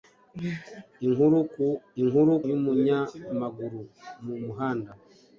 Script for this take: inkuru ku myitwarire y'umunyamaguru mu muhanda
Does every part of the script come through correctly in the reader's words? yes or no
no